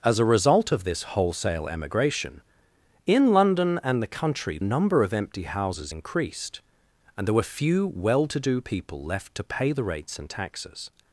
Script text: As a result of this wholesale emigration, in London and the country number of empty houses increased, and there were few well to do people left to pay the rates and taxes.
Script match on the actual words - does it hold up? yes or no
yes